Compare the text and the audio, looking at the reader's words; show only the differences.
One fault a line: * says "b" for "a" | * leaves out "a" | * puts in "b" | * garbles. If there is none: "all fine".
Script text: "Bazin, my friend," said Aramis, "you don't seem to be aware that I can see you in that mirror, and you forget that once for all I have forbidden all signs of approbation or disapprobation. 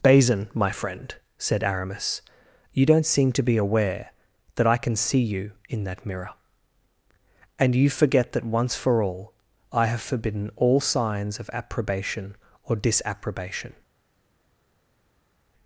all fine